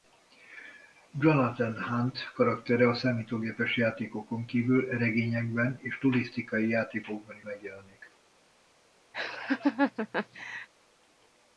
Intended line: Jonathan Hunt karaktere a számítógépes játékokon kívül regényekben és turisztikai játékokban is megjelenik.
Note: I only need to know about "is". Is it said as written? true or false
false